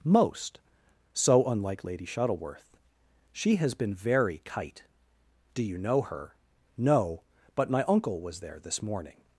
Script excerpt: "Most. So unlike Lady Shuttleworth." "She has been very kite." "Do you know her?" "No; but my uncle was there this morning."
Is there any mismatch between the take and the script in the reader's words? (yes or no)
no